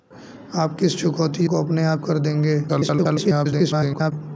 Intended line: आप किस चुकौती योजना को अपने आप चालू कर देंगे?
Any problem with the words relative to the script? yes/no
yes